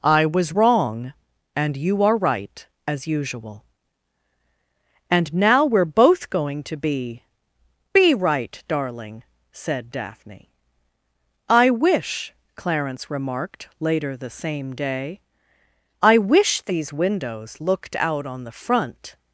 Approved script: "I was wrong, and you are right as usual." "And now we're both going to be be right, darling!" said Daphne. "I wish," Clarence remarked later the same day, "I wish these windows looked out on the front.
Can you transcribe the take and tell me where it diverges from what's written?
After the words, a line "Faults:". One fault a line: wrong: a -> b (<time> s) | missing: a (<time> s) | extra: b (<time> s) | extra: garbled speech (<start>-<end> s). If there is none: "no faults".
"I was wrong, and you are right as usual." "And now we're both going to be be right, darling!" said Daphne. "I wish," Clarence remarked later the same day, "I wish these windows looked out on the front.
Faults:
no faults